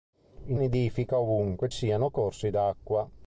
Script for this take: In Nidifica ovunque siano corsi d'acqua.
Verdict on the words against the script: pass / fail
pass